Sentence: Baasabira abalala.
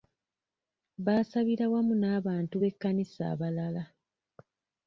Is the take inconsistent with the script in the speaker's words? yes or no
yes